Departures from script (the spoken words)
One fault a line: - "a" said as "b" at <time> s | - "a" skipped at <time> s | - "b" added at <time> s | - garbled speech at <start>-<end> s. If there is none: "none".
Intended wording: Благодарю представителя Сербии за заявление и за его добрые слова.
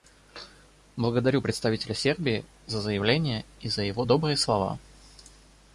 none